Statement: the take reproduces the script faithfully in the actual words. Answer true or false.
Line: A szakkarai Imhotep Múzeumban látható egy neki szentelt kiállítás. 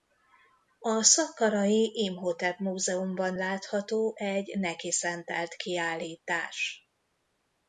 true